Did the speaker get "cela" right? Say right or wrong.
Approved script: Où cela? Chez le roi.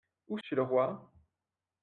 wrong